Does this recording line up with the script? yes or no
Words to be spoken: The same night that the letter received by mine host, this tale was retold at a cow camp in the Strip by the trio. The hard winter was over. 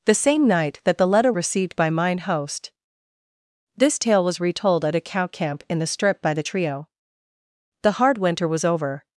yes